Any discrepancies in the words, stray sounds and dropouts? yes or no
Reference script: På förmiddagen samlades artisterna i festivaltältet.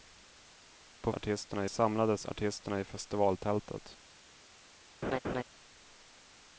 yes